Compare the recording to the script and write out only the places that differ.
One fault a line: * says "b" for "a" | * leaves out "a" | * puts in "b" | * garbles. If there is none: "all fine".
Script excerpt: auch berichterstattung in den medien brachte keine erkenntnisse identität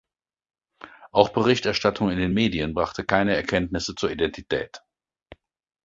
* puts in "zur"